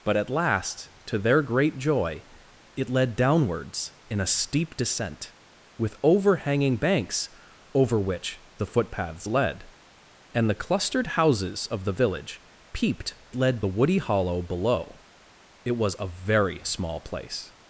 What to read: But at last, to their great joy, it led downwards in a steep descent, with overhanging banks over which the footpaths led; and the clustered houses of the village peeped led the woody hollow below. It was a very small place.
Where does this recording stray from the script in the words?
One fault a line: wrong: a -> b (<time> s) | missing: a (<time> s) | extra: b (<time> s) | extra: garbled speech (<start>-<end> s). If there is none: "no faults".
no faults